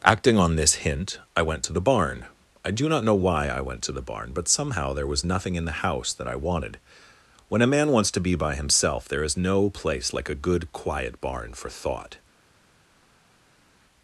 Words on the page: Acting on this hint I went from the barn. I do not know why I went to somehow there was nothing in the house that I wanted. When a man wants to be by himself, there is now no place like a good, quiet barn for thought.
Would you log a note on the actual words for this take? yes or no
yes